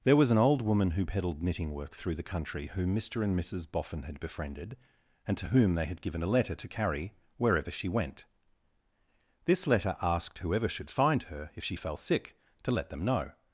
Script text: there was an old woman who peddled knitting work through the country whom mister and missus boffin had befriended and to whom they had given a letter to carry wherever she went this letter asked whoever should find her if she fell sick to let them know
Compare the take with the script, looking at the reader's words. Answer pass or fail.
pass